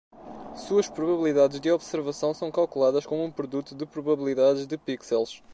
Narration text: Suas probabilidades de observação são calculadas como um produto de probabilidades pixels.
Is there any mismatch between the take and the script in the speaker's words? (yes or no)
yes